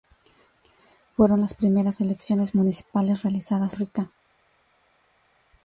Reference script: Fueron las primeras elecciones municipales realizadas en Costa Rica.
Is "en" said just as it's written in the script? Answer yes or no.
no